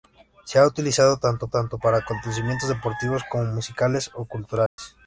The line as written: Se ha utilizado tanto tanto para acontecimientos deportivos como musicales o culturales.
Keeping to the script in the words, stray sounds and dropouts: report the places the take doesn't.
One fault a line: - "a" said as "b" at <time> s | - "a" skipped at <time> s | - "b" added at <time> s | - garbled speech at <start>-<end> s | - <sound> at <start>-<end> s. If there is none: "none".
- dropout at 4.7-4.8 s